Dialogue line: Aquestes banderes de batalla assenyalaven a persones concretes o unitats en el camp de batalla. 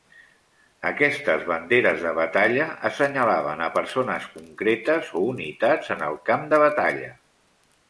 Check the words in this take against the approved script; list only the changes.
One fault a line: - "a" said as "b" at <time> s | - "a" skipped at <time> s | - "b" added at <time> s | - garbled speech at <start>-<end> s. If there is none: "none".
none